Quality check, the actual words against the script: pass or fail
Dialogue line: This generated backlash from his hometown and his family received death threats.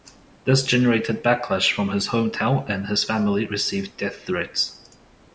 pass